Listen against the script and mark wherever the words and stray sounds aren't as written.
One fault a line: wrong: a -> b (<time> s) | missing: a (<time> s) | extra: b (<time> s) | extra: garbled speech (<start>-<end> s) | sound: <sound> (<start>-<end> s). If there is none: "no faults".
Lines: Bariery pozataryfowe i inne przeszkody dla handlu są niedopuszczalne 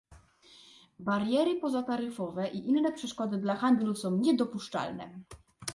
no faults